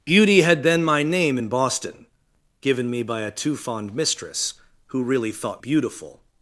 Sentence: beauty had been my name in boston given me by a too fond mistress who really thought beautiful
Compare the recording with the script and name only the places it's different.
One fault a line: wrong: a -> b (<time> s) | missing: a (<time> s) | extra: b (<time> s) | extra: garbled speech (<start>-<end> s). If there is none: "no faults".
no faults